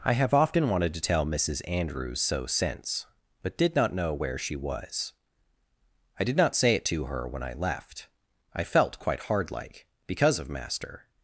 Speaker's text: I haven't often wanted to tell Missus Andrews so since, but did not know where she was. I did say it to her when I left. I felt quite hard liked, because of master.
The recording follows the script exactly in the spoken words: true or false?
false